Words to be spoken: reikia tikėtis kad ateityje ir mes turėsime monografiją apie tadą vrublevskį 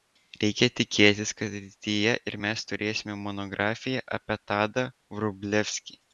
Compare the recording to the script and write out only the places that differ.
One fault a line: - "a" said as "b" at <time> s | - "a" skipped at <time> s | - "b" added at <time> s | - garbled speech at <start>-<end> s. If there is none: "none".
none